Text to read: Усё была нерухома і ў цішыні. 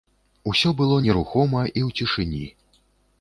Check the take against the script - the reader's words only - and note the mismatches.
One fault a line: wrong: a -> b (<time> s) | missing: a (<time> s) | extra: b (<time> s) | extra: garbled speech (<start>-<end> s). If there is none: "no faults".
wrong: была -> было (0.8 s)